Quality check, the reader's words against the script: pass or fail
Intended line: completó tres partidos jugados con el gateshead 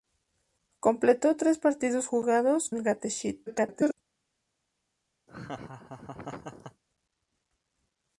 fail